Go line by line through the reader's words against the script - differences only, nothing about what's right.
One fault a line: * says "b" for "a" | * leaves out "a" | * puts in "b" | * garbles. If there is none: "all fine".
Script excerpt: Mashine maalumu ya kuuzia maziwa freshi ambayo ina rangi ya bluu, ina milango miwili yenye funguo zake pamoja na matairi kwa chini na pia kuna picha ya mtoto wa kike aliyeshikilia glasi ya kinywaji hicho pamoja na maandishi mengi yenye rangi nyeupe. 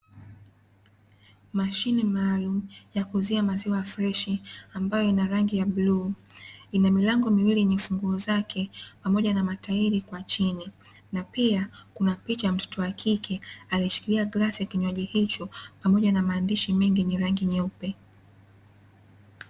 all fine